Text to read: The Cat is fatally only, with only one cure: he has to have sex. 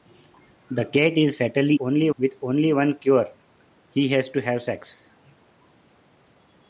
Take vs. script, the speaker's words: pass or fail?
pass